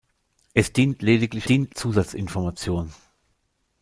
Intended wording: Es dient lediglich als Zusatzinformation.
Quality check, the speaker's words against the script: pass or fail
fail